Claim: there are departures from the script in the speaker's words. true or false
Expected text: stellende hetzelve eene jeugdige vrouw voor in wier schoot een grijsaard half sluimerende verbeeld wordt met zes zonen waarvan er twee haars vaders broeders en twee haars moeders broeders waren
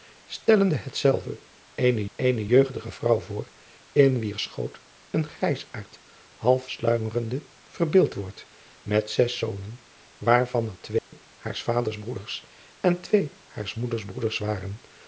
true